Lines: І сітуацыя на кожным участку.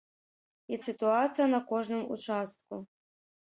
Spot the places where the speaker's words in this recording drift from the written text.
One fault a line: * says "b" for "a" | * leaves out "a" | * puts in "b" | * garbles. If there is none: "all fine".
all fine